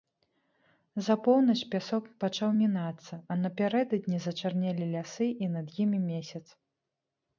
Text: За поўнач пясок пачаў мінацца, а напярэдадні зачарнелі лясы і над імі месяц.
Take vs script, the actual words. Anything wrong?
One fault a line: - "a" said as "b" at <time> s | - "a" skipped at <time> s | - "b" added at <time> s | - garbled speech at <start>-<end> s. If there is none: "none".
none